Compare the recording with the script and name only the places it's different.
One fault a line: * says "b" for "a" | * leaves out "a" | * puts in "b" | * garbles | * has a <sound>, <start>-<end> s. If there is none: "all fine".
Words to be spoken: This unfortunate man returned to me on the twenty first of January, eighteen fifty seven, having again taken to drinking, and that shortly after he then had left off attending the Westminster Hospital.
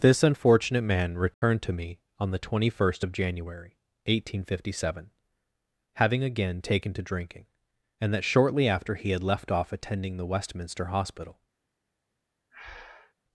* has a dropout, 1.3-1.4 s
* leaves out "then"
* has a breath, 12.5-13.1 s